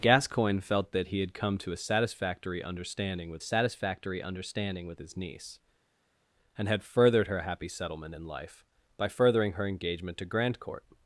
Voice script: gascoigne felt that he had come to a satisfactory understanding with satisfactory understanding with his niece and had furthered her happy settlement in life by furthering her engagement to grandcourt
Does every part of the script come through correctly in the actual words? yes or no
yes